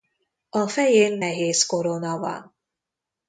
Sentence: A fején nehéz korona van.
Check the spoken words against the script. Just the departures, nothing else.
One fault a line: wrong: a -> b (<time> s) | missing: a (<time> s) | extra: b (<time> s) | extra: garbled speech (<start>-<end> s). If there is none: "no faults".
no faults